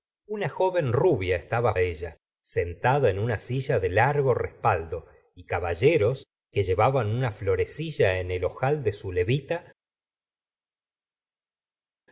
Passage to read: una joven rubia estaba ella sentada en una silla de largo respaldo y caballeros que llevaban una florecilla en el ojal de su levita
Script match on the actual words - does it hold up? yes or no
yes